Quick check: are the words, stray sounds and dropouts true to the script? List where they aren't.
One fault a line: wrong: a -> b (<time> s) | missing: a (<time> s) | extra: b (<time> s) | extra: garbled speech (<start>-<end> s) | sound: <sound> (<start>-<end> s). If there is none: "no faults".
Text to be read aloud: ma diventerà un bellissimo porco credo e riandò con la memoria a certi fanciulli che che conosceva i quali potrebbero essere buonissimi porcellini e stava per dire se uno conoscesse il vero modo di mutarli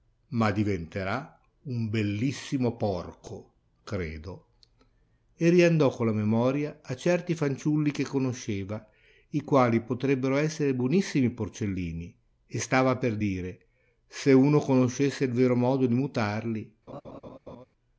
missing: che (8.0 s)
sound: laugh (16.9-17.7 s)